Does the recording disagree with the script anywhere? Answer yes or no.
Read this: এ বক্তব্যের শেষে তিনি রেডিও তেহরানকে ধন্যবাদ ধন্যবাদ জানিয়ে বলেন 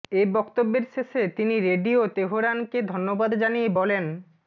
yes